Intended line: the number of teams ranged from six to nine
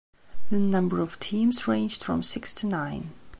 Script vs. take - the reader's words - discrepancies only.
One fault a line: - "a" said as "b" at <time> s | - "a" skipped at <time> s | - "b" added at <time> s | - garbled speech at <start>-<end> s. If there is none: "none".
none